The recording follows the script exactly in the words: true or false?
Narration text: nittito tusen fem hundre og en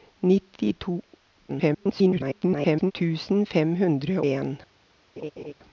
false